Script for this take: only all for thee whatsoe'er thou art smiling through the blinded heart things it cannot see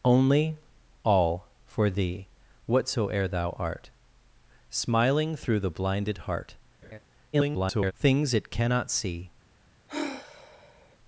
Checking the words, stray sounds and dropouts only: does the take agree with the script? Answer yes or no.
no